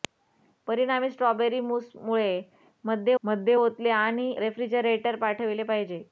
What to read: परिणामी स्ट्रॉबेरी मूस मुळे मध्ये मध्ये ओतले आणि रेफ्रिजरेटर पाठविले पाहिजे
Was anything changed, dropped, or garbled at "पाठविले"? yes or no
no